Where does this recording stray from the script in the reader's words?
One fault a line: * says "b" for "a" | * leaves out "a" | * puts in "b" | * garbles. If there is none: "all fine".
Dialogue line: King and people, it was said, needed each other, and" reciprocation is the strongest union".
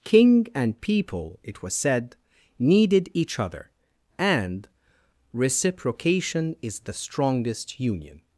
all fine